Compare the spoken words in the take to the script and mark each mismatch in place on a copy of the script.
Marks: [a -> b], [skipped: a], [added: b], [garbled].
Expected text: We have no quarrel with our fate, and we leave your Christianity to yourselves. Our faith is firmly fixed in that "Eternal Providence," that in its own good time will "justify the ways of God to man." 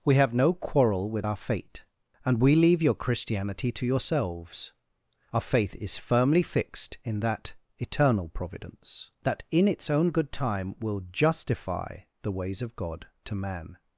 We have no quarrel with our fate, and we leave your Christianity to yourselves. Our faith is firmly fixed in that "Eternal Providence," that in its own good time will "justify the ways of God to man."